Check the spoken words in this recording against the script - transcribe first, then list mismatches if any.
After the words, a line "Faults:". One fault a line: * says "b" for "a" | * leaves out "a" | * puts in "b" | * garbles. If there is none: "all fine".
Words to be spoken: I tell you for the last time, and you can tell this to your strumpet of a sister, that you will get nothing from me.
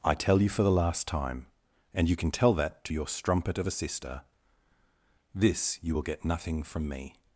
I tell you for the last time, and you can tell that to your strumpet of a sister, this you will get nothing from me.
Faults:
* says "that" for "this"
* says "this" for "that"